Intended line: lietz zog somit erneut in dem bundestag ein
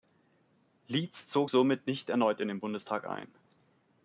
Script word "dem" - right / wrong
wrong